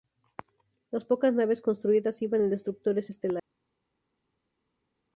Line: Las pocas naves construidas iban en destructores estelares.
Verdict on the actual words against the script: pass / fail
pass